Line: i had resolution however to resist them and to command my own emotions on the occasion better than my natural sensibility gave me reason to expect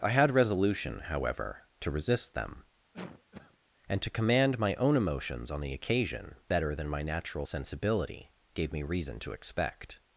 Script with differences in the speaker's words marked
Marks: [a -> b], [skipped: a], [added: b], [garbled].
i had resolution however to resist them and to command my own emotions on the occasion better than my natural sensibility gave me reason to expect